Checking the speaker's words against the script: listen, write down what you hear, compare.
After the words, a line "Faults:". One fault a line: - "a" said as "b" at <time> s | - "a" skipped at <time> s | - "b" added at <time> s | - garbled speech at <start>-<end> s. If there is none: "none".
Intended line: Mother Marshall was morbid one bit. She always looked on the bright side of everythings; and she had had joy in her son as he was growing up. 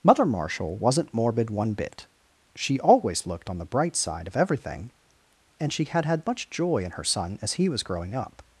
Mother Marshall wasn't morbid one bit. She always looked on the bright side of everything; and she had had much joy in her son as he was growing up.
Faults:
- "was" said as "wasn't" at 0.8 s
- "everythings" said as "everything" at 4.3 s
- "much" added at 6.2 s